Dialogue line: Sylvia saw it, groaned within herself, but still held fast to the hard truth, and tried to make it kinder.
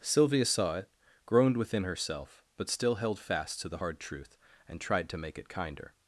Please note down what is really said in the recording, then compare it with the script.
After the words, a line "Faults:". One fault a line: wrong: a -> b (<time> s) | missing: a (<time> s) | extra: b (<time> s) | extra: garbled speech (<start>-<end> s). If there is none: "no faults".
Sylvia saw it, groaned within herself, but still held fast to the hard truth, and tried to make it kinder.
Faults:
no faults